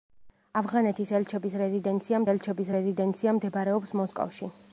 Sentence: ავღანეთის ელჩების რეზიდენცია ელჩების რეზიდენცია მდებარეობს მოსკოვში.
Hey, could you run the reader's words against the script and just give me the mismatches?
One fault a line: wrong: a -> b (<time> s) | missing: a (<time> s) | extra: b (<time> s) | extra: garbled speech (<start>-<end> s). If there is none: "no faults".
no faults